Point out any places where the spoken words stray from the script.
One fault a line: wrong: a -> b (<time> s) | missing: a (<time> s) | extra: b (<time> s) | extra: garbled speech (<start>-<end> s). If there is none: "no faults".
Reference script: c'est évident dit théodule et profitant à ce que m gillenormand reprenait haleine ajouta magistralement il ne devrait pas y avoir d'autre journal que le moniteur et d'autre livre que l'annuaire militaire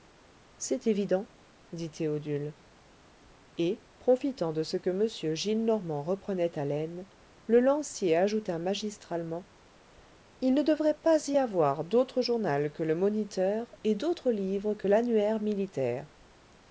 wrong: à -> de (4.5 s)
extra: le lancier (7.5 s)